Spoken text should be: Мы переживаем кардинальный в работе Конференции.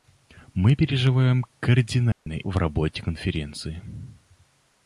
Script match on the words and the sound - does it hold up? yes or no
no